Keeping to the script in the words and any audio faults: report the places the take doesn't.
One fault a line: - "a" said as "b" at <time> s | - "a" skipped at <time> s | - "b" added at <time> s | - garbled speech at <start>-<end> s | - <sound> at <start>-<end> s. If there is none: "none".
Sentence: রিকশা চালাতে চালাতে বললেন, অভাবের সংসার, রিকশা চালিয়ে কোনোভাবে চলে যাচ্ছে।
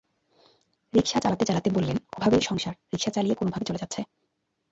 none